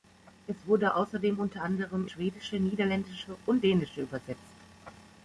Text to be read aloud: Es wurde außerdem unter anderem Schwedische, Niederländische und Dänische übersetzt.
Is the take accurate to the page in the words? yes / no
yes